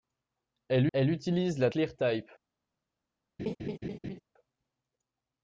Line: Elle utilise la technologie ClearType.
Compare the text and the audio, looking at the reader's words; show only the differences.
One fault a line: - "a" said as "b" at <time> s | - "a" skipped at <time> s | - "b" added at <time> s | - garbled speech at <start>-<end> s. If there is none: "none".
- "elle" added at 0.9 s
- "technologie" skipped at 1.7 s